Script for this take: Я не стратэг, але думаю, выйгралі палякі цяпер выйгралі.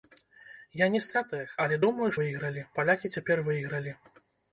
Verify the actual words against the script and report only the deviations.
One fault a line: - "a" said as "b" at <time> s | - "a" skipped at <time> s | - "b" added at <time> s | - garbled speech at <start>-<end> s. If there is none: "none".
none